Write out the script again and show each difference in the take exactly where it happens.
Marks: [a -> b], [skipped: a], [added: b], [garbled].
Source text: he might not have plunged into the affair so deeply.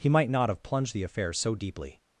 he might not have plunged [skipped: into] the affair so deeply.